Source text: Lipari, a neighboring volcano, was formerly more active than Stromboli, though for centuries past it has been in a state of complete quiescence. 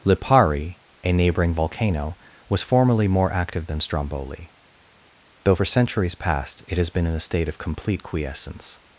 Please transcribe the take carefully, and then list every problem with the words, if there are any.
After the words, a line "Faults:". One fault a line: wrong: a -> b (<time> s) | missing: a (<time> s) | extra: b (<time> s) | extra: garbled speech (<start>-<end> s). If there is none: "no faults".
Lipari, a neighboring volcano, was formerly more active than Stromboli, though for centuries past it has been in a state of complete quiescence.
Faults:
no faults